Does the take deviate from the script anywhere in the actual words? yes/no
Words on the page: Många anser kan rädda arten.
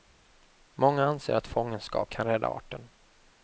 yes